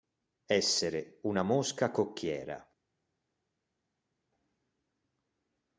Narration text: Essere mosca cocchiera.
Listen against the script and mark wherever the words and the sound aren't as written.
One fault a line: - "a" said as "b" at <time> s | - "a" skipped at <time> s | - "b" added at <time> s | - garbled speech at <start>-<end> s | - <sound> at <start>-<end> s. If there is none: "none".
- "una" added at 1.2 s